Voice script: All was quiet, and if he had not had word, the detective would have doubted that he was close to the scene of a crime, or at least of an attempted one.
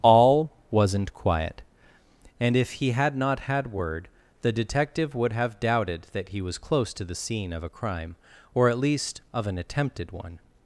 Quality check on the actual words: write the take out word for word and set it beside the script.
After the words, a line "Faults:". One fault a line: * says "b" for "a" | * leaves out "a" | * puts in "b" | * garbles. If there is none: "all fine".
All wasn't quiet, and if he had not had word, the detective would have doubted that he was close to the scene of a crime, or at least of an attempted one.
Faults:
* says "wasn't" for "was"